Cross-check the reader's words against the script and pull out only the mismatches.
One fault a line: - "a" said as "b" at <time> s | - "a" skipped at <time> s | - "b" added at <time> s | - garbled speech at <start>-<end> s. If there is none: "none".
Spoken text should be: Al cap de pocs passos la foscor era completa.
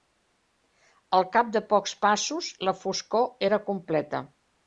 none